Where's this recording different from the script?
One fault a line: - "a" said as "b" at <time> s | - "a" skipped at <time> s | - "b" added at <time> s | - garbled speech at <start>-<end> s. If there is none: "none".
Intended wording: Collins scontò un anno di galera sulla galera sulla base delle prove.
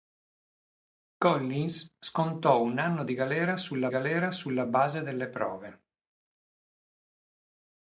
none